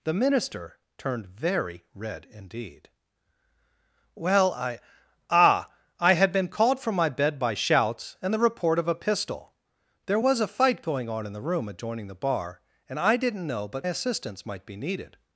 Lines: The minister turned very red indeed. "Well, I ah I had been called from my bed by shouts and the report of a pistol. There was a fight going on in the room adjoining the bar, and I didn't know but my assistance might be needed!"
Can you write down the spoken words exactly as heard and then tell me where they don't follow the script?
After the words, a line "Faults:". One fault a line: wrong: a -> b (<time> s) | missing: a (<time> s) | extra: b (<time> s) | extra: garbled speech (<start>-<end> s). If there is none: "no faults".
The minister turned very red indeed. "Well, I ah I had been called from my bed by shouts and the report of a pistol. There was a fight going on in the room adjoining the bar, and I didn't know but assistance might be needed!"
Faults:
missing: my (13.9 s)